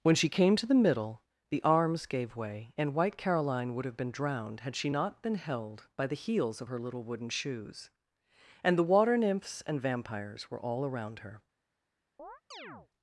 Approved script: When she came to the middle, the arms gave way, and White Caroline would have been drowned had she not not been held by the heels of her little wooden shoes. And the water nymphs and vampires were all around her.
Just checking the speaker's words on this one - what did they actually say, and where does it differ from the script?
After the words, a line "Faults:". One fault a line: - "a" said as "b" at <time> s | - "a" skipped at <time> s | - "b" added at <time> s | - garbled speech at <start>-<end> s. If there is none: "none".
When she came to the middle, the arms gave way, and White Caroline would have been drowned had she not been held by the heels of her little wooden shoes. And the water nymphs and vampires were all around her.
Faults:
- "not" skipped at 5.2 s